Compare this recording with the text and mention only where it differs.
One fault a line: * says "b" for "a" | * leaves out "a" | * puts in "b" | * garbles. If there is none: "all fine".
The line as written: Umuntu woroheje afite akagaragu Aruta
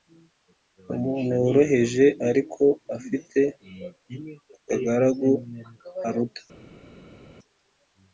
* puts in "ariko"